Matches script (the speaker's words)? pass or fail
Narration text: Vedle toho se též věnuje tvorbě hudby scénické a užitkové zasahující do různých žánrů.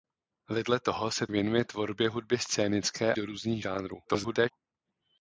fail